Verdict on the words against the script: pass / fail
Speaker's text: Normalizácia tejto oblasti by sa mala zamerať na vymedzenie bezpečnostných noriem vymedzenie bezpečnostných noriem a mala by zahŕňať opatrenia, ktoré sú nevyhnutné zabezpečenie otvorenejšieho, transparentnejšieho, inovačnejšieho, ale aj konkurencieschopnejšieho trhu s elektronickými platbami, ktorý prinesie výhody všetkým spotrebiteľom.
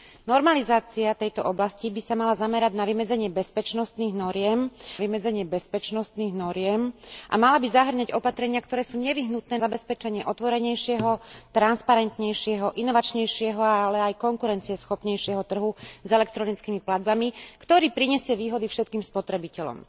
pass